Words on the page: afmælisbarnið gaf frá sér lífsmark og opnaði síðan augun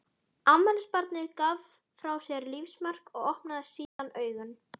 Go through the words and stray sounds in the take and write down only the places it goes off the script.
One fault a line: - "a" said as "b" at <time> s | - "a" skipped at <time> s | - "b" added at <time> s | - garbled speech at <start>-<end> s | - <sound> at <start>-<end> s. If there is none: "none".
- dropout at 3.9-4.0 s